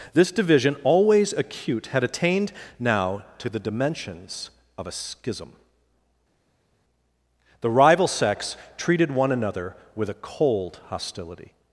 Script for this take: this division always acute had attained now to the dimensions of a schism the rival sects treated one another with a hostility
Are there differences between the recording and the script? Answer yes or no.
yes